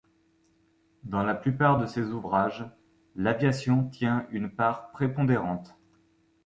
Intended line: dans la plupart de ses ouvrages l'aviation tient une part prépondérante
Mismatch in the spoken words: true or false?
false